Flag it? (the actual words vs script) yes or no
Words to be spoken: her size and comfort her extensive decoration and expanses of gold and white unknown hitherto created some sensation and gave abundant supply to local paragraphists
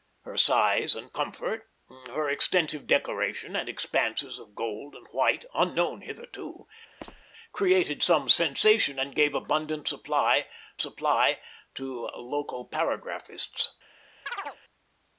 yes